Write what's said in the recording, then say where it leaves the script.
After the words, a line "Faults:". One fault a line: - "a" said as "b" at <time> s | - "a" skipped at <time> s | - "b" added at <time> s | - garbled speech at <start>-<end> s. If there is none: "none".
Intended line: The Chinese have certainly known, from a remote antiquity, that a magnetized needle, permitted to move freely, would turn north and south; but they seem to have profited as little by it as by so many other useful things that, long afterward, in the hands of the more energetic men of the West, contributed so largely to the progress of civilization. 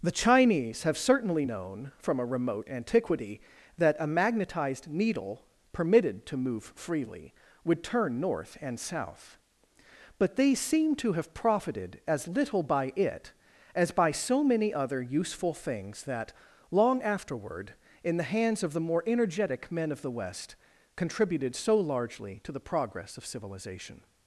The Chinese have certainly known, from a remote antiquity, that a magnetized needle, permitted to move freely, would turn north and south; but they seem to have profited as little by it as by so many other useful things that, long afterward, in the hands of the more energetic men of the West, contributed so largely to the progress of civilization.
Faults:
none